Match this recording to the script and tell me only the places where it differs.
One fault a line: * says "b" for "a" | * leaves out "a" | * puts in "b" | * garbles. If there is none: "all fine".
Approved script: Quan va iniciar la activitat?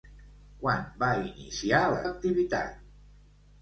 all fine